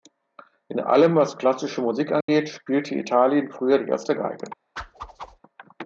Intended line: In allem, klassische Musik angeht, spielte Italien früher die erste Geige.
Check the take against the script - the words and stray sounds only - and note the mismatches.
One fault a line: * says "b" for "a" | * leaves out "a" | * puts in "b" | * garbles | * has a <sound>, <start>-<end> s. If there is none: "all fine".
* puts in "was"
* has a dropout, 2.2-2.3 s
* has a whoosh, 4.8-5.4 s